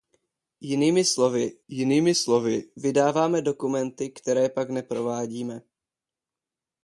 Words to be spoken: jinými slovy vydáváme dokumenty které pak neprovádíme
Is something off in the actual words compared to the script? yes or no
yes